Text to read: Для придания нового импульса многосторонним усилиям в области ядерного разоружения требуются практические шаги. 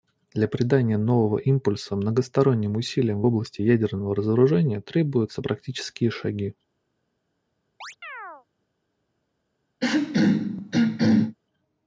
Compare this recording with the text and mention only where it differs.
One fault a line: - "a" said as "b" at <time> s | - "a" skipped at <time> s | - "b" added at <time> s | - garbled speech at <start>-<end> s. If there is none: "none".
none